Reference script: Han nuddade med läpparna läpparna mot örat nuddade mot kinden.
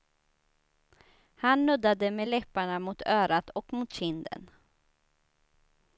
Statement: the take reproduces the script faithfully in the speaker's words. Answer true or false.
false